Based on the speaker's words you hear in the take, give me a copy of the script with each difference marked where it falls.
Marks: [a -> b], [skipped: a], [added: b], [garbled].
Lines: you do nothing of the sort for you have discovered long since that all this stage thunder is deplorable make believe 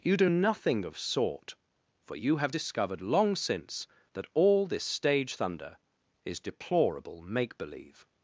you do nothing of [skipped: the] sort for you have discovered long since that all this stage thunder is deplorable make believe